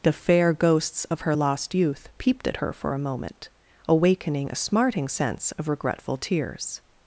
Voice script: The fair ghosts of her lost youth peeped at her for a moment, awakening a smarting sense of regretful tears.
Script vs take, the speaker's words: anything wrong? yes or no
no